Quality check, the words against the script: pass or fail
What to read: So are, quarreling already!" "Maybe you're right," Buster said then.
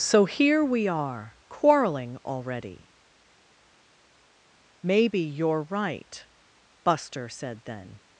fail